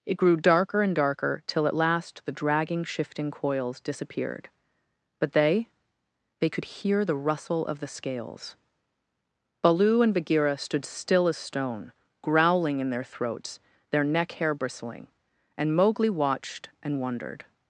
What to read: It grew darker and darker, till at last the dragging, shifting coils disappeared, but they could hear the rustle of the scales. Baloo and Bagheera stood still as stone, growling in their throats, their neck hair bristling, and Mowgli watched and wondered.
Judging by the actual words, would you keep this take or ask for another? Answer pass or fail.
fail